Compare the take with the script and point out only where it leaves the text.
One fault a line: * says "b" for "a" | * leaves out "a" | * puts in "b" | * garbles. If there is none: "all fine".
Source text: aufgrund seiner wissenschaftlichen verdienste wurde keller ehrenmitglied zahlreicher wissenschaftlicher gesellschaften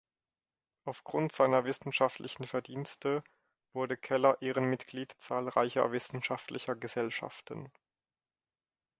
all fine